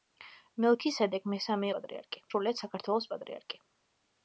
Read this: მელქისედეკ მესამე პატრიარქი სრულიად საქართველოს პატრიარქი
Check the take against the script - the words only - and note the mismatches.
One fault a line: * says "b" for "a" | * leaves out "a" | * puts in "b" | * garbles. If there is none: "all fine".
all fine